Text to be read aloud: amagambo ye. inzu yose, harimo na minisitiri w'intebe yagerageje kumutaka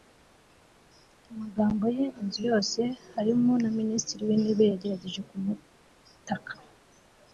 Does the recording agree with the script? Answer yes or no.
yes